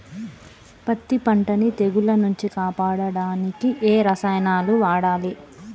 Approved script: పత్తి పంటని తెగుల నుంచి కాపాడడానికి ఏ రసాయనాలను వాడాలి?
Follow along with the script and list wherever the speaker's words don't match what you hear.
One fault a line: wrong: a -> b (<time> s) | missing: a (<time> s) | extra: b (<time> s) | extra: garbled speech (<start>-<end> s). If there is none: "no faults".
no faults